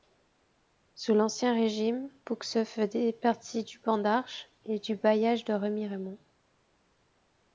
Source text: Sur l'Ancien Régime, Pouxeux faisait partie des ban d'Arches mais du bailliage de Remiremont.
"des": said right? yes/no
no